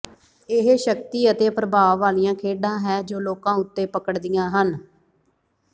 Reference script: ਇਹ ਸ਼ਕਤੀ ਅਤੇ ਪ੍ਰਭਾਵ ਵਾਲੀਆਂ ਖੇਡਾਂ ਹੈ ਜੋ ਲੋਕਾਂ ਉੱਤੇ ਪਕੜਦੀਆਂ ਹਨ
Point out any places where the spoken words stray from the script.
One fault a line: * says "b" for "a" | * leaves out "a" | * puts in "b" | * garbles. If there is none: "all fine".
all fine